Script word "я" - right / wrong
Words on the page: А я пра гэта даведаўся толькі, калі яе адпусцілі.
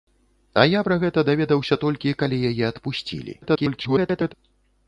right